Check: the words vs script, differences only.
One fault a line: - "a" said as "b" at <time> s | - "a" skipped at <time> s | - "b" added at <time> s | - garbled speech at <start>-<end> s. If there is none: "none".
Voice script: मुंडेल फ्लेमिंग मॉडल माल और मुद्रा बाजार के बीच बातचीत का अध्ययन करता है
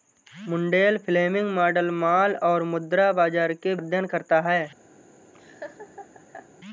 - "बीच बातचीत का" skipped at 3.8 s